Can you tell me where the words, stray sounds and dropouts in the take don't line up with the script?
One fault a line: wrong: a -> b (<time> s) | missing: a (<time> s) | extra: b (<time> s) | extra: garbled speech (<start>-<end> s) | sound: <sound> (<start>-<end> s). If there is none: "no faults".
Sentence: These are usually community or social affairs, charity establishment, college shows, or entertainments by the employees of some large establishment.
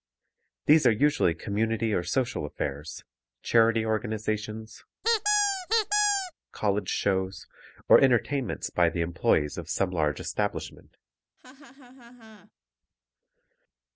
wrong: establishment -> organizations (3.8 s)
sound: squeak (5.0-6.3 s)
sound: laugh (11.4-12.5 s)